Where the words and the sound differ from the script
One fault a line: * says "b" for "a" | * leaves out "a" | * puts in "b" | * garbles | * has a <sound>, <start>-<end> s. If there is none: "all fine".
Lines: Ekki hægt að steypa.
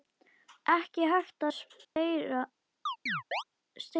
* has a dropout, 1.8-2.0 s
* has a chirp, 2.9-3.4 s